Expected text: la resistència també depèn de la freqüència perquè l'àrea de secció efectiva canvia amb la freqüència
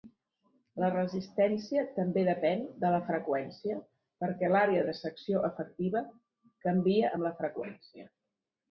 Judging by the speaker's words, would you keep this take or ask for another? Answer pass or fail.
pass